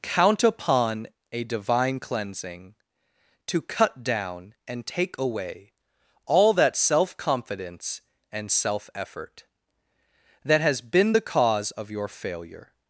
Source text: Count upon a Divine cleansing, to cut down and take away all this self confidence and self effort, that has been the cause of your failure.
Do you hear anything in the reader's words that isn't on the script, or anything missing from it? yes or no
yes